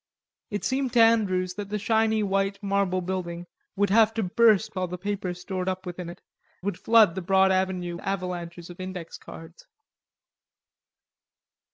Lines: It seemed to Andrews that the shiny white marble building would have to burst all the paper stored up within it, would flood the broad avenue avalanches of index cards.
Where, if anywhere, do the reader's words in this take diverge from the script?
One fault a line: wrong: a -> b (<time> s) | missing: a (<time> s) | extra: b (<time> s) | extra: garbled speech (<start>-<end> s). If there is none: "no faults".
no faults